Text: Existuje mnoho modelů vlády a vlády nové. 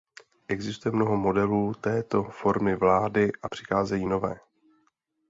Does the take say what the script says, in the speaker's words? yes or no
no